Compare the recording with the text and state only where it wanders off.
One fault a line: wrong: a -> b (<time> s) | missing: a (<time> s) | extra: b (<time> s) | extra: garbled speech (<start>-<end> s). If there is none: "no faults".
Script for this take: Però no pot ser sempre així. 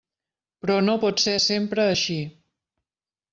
no faults